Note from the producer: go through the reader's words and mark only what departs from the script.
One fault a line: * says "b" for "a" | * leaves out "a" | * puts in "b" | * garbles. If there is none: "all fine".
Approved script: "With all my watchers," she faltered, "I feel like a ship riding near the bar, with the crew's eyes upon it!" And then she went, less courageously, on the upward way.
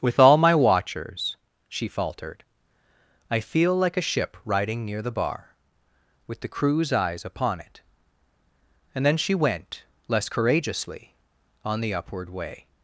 all fine